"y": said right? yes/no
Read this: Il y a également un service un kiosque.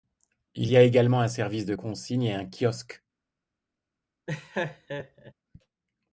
yes